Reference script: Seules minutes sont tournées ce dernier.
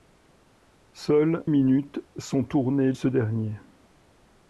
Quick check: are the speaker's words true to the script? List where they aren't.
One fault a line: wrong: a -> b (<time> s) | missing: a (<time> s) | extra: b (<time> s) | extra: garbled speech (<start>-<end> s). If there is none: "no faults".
no faults